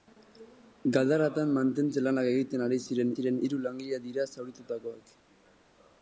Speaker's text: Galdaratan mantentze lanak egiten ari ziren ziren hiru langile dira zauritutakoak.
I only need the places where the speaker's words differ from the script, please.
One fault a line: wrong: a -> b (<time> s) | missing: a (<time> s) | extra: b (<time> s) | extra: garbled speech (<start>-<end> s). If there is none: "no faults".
no faults